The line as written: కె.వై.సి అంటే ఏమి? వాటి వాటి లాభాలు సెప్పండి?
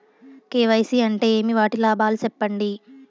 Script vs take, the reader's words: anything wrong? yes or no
yes